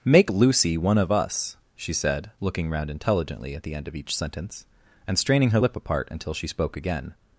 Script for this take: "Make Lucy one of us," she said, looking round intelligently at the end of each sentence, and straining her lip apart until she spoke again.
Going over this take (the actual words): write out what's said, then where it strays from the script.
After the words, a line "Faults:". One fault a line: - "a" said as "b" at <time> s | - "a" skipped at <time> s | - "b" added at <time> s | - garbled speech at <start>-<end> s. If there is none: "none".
"Make Lucy one of us," she said, looking round intelligently at the end of each sentence, and straining her lip apart until she spoke again.
Faults:
none